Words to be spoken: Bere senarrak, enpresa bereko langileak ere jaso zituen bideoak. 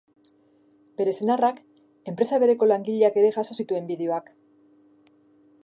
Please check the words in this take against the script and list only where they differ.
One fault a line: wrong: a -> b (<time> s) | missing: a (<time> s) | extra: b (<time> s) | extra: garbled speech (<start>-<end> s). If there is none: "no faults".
no faults